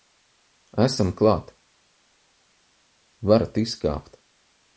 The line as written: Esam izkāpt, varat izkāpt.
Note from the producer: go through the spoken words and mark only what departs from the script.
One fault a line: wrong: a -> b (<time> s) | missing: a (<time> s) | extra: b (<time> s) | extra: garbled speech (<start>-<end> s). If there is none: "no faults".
wrong: izkāpt -> klāt (1.2 s)